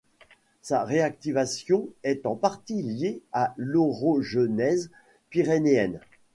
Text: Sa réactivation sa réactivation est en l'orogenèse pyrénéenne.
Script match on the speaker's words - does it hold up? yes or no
no